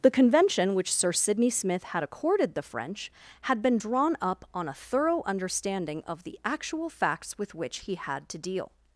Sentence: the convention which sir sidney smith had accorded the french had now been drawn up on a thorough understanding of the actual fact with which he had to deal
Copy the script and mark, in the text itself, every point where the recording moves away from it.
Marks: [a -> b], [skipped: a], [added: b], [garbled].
the convention which sir sidney smith had accorded the french had [skipped: now] been drawn up on a thorough understanding of the actual [fact -> facts] with which he had to deal